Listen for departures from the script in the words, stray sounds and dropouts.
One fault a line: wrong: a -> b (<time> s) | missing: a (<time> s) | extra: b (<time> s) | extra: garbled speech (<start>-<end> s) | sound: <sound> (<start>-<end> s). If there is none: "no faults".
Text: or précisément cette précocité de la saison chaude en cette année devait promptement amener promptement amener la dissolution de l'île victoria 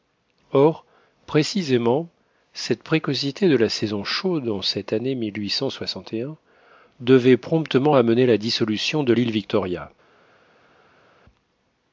missing: promptement amener (8.3 s)